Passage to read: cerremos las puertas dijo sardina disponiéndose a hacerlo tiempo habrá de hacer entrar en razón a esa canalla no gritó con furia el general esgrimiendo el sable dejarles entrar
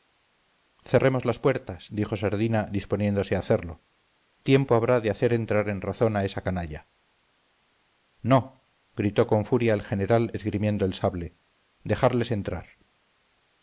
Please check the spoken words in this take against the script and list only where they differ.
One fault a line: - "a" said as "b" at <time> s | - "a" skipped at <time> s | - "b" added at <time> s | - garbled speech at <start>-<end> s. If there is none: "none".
none